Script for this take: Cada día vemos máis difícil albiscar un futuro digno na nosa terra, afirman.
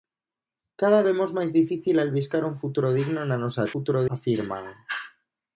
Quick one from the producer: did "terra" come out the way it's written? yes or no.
no